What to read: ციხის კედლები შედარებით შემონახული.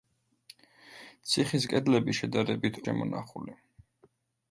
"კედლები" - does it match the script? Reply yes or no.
yes